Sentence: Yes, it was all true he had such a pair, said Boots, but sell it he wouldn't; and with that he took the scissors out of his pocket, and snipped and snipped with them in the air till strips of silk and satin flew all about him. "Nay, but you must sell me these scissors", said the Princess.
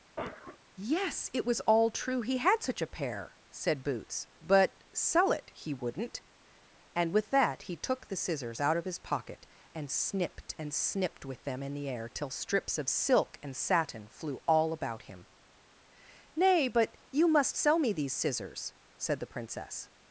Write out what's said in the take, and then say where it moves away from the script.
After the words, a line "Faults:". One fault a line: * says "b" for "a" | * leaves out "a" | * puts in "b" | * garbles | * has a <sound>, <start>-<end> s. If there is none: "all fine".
Yes, it was all true he had such a pair, said Boots, but sell it he wouldn't; and with that he took the scissors out of his pocket, and snipped and snipped with them in the air till strips of silk and satin flew all about him. "Nay, but you must sell me these scissors", said the Princess.
Faults:
* has a cough, 0.2-0.6 s